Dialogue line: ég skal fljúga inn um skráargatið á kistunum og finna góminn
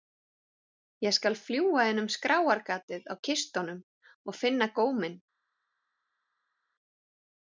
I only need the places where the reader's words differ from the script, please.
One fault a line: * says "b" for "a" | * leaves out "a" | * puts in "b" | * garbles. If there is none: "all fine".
all fine